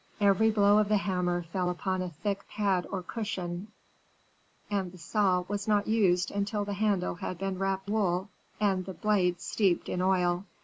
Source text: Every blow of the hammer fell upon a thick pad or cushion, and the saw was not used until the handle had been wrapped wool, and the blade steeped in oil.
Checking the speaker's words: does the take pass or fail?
pass